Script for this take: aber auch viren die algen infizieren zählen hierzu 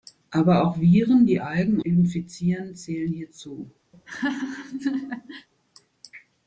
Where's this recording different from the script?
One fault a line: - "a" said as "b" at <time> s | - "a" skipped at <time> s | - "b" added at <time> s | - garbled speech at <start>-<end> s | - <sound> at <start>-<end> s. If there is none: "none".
- laugh at 3.9-5.5 s